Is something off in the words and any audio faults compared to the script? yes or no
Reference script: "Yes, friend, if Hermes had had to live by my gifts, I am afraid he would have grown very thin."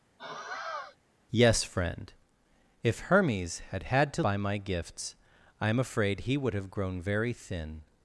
yes